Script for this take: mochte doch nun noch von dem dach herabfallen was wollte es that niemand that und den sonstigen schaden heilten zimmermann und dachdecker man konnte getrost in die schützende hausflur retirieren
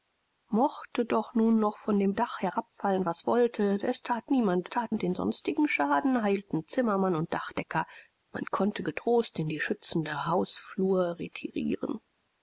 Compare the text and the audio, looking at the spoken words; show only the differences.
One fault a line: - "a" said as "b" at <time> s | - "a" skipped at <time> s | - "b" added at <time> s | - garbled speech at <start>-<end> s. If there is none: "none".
none